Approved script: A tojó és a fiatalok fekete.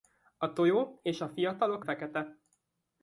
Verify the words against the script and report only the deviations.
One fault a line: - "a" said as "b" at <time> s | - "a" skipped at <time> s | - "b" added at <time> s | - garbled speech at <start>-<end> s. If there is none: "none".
none